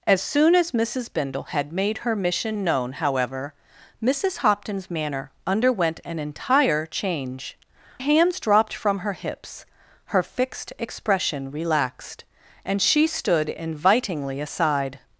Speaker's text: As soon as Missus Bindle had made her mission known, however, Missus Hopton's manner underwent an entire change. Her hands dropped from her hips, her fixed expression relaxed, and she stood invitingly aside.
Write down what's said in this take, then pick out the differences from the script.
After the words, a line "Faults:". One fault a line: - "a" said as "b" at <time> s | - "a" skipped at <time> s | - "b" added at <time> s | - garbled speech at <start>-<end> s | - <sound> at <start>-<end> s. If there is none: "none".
As soon as Missus Bindle had made her mission known, however, Missus Hopton's manner underwent an entire change. Hands dropped from her hips, her fixed expression relaxed, and she stood invitingly aside.
Faults:
- "Her" skipped at 7.5 s